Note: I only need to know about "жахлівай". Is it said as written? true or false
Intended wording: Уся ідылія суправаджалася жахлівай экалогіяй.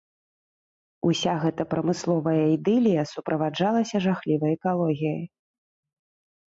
true